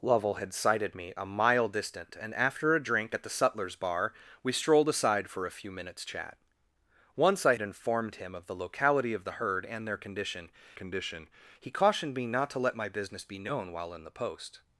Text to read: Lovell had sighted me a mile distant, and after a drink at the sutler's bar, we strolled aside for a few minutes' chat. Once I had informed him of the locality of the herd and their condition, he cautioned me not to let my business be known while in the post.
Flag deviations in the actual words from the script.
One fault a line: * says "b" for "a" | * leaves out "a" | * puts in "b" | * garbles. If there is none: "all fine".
* leaves out "had"
* puts in "condition"